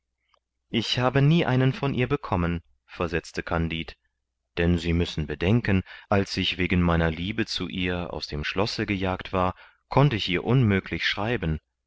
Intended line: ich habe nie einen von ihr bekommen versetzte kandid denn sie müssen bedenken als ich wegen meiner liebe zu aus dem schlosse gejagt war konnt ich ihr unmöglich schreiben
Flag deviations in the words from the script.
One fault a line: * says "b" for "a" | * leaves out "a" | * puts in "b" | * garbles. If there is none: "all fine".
* puts in "ihr"